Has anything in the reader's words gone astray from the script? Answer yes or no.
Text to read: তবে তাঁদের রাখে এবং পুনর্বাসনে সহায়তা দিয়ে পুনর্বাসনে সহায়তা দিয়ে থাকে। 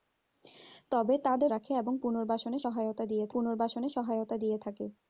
no